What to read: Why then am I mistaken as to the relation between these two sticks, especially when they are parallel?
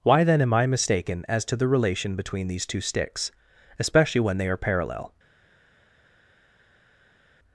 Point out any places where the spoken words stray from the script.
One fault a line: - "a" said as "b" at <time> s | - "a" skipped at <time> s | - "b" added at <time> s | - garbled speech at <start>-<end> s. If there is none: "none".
none